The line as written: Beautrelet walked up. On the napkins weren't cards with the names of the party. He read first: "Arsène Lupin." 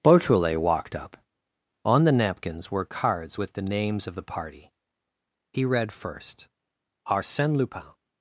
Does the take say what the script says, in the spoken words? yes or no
no